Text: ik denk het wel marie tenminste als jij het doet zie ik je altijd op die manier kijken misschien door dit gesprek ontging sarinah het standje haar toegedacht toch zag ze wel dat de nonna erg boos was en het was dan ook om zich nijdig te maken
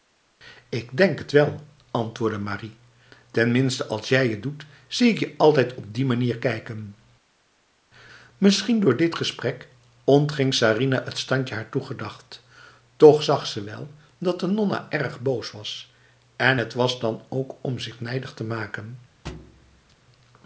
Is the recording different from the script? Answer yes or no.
yes